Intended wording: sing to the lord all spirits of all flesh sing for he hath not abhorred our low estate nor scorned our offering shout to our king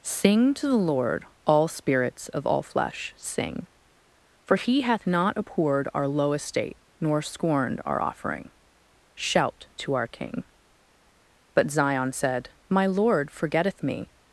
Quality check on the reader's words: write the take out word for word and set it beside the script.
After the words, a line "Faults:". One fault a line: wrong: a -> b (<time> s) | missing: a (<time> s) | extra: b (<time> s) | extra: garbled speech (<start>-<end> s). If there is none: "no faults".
sing to the lord all spirits of all flesh sing for he hath not abhorred our low estate nor scorned our offering shout to our king but zion said my lord forgetteth me
Faults:
extra: but zion said my lord forgetteth me (11.5 s)